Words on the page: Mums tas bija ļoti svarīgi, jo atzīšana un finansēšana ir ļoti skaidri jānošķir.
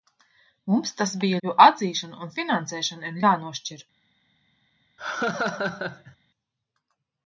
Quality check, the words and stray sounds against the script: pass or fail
fail